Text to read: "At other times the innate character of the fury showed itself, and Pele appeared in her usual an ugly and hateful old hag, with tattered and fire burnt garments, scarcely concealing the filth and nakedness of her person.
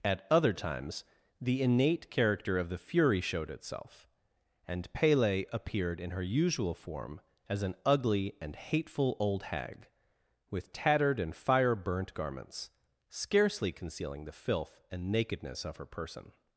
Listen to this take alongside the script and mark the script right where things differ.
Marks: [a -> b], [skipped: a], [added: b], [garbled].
"At other times the innate character of the fury showed itself, and Pele appeared in her usual [added: form as] an ugly and hateful old hag, with tattered and fire burnt garments, scarcely concealing the filth and nakedness of her person.